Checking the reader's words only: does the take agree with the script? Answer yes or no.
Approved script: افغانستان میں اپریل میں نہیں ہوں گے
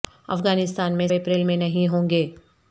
yes